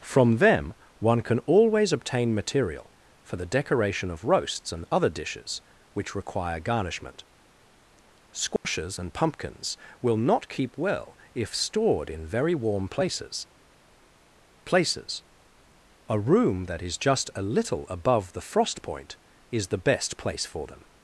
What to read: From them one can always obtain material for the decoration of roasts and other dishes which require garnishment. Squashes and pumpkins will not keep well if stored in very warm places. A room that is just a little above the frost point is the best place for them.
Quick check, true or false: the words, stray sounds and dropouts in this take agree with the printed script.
false